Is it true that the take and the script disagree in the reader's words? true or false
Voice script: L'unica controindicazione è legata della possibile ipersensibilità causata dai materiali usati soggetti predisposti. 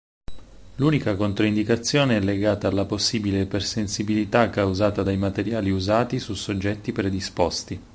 true